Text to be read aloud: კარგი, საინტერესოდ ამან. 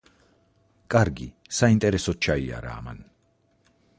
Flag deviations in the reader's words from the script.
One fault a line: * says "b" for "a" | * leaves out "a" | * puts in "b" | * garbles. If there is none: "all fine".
* puts in "ჩაიარა"